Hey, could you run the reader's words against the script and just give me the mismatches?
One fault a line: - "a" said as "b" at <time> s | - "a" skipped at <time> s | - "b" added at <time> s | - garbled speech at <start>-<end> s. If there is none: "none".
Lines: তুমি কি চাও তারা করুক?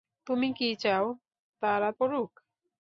none